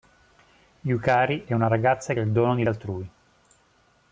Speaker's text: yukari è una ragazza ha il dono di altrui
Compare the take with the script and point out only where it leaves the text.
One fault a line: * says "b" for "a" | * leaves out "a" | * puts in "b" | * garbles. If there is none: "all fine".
all fine